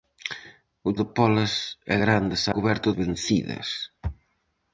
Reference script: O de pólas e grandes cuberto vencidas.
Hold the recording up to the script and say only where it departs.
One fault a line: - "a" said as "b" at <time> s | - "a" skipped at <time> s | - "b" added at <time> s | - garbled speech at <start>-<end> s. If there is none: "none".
none